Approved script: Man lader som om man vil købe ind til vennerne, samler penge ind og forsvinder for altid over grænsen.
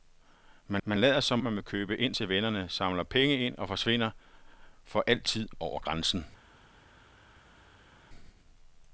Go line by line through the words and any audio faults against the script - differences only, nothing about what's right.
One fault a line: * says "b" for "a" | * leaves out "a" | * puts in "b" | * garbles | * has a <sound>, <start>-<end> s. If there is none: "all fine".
* puts in "man"
* leaves out "om"